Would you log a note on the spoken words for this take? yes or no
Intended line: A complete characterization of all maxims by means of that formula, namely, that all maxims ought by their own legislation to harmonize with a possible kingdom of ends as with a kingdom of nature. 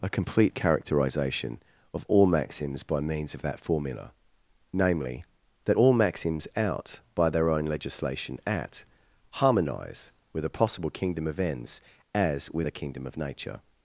yes